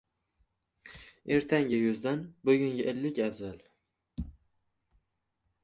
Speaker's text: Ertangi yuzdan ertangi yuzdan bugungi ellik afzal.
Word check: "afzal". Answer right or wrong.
right